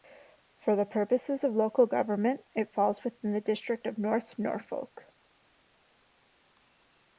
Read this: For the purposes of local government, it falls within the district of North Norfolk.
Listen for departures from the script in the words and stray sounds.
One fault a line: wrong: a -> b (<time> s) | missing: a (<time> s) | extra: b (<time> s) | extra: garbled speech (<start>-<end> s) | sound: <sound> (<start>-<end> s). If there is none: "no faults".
no faults